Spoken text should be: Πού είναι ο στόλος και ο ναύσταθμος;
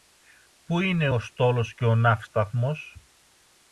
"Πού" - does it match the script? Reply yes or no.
yes